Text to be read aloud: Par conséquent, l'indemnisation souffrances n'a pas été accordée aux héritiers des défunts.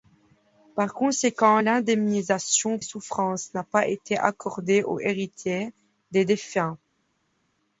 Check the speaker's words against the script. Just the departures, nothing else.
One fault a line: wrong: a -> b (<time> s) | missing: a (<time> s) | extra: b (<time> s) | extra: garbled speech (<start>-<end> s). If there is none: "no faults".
no faults